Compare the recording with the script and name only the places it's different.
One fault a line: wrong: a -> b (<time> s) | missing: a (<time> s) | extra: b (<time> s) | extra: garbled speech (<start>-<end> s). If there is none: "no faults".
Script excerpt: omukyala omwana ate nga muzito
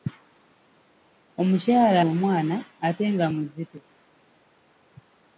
no faults